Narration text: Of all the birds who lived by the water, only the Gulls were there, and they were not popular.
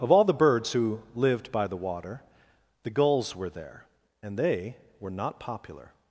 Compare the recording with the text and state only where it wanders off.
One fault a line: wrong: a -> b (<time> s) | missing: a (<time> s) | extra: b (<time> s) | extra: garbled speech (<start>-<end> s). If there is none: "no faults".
missing: only (2.2 s)